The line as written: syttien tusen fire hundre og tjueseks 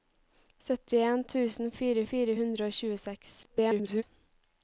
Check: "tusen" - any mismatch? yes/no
no